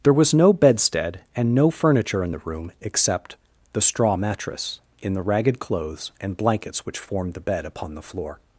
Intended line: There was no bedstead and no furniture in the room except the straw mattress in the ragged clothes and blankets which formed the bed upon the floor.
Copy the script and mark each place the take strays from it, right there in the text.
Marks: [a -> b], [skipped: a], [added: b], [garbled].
There was no bedstead and no furniture in the room except the straw mattress in the ragged clothes and blankets which formed the bed upon the floor.